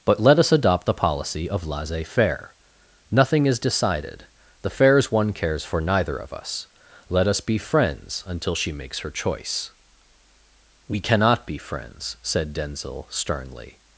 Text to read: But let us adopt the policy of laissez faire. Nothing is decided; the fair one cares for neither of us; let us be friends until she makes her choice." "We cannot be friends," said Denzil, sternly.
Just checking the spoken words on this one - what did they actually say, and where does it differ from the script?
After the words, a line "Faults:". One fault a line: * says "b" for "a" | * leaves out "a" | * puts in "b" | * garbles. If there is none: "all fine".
But let us adopt the policy of laissez faire. Nothing is decided; the fairs one cares for neither of us; let us be friends until she makes her choice." "We cannot be friends," said Denzil, sternly.
Faults:
* says "fairs" for "fair"